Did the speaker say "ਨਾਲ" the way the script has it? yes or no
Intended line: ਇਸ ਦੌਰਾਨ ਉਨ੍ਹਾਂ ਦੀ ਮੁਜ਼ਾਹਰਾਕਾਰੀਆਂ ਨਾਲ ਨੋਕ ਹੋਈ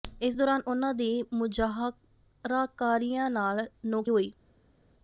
yes